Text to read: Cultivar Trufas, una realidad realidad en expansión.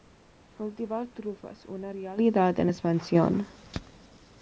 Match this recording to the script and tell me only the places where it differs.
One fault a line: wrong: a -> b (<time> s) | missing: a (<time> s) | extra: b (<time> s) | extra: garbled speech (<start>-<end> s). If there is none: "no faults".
missing: realidad (2.6 s)